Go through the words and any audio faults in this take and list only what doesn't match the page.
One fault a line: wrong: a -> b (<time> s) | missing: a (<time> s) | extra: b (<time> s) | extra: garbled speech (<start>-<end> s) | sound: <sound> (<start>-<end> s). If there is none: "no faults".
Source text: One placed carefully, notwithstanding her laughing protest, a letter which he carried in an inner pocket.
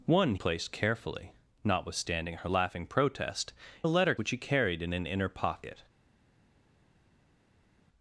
no faults